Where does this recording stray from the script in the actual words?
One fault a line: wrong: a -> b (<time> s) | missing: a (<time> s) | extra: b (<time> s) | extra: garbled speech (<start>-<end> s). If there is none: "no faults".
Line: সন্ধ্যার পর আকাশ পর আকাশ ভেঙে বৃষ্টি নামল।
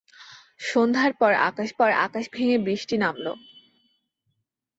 no faults